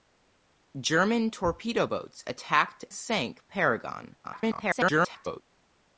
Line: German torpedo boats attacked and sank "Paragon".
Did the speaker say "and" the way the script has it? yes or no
no